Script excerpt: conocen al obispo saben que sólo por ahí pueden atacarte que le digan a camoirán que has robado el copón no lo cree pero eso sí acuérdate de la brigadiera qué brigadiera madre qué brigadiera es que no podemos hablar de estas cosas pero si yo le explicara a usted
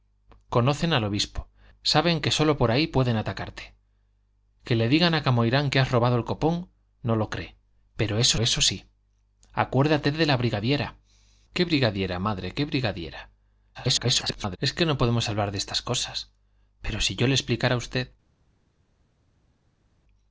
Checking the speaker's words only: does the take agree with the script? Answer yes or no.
no